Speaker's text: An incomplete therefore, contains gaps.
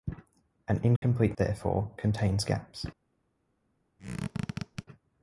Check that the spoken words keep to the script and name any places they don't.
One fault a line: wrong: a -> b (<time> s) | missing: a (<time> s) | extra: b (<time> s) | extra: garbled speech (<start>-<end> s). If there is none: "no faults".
no faults